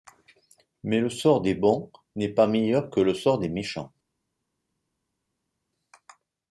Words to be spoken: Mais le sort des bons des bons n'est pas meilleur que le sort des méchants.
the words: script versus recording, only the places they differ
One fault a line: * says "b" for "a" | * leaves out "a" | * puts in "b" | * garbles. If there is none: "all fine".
* leaves out "des bons"